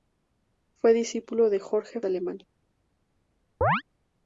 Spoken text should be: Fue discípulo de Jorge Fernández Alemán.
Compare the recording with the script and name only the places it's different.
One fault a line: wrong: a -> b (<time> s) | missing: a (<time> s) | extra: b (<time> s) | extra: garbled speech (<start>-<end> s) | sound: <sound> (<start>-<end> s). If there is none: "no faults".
missing: Fernández (2.0 s)
sound: chirp (3.6-3.8 s)